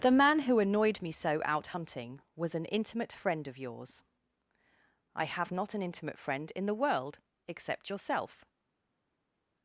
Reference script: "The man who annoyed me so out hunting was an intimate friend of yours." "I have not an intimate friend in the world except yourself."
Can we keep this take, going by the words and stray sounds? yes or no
yes